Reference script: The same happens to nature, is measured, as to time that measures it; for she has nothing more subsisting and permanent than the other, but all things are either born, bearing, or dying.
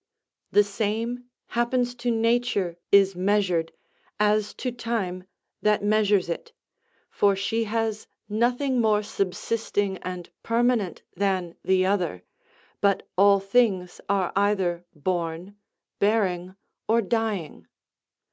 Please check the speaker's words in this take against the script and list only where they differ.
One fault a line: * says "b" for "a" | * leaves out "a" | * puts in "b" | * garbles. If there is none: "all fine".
all fine